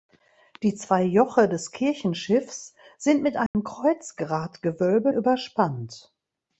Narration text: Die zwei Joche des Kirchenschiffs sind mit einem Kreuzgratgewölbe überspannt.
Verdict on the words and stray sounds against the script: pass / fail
fail